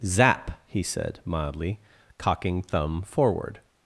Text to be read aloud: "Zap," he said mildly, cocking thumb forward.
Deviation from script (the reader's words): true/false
false